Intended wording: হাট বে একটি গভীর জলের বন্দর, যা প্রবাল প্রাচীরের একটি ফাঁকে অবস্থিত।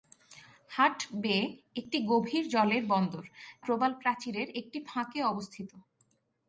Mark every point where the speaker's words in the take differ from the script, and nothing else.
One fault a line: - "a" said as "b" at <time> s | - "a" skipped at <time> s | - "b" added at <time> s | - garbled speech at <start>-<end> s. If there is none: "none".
- "যা" skipped at 3.2 s